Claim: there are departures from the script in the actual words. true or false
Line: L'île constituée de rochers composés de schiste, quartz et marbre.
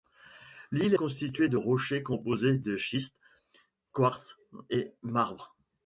false